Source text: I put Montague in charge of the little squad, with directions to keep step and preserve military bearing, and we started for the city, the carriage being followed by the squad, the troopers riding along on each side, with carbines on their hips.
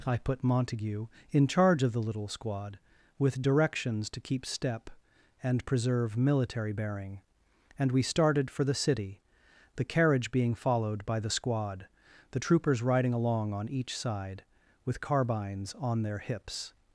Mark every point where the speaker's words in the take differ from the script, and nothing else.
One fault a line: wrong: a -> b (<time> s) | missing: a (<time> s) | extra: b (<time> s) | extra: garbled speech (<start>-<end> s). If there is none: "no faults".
no faults